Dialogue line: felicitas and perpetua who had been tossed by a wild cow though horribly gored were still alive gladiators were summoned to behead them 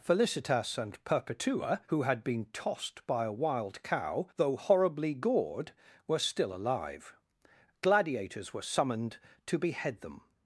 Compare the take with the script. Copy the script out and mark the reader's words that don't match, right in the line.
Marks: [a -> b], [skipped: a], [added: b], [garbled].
felicitas and perpetua who had been tossed by a wild cow though horribly gored were still alive gladiators were summoned to behead them